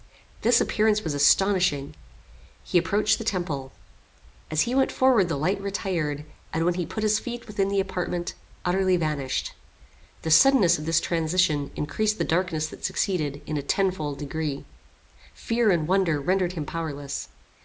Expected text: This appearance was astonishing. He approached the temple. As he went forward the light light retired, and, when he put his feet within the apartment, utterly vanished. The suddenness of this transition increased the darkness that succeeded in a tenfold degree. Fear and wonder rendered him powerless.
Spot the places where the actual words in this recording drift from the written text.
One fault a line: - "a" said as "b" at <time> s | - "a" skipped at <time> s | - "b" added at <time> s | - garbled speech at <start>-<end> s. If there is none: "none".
- "light" skipped at 5.6 s